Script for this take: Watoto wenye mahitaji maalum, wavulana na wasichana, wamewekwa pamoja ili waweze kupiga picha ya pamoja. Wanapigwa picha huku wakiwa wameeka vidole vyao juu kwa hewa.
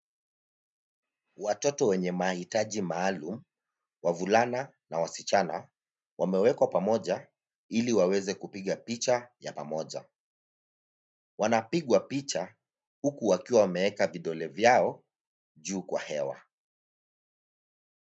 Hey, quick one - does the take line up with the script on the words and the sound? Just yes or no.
yes